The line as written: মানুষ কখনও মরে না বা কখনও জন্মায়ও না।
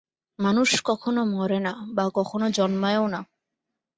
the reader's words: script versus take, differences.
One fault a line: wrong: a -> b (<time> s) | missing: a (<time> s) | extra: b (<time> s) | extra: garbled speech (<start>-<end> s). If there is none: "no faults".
no faults